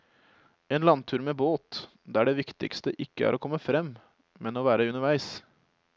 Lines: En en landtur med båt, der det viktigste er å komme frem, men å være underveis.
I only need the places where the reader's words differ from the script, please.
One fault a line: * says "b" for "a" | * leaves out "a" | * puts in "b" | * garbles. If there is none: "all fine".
* leaves out "en"
* puts in "ikke"